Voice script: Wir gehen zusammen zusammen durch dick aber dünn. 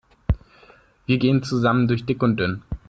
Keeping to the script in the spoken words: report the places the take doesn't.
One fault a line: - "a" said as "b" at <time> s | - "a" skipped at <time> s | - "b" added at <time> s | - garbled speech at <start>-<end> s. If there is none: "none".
- "zusammen" skipped at 1.9 s
- "aber" said as "und" at 2.2 s